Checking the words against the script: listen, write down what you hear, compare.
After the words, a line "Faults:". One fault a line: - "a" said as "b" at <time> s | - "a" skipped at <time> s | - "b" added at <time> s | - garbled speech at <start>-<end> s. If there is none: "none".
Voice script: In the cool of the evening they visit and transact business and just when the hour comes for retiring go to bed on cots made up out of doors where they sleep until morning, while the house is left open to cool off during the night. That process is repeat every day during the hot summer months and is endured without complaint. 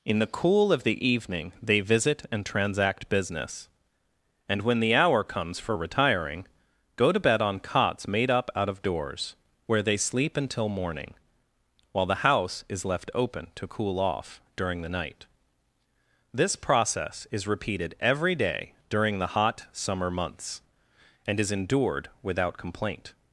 In the cool of the evening they visit and transact business and when the hour comes for retiring go to bed on cots made up out of doors where they sleep until morning, while the house is left open to cool off during the night. This process is repeated every day during the hot summer months and is endured without complaint.
Faults:
- "just" skipped at 4.6 s
- "That" said as "This" at 16.3 s
- "repeat" said as "repeated" at 17.5 s